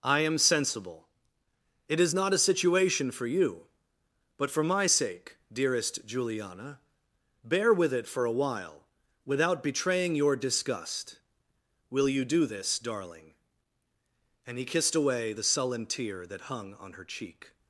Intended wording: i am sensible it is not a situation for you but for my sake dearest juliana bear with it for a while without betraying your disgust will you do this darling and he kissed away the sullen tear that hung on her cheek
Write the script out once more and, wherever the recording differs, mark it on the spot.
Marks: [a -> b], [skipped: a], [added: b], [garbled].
i am sensible it is not a situation for you but for my sake dearest juliana bear with it for a while without betraying your disgust will you do this darling and he kissed away the sullen tear that hung on her cheek